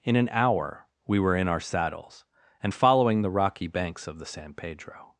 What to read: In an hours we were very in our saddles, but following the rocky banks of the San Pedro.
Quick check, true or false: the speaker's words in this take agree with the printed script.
false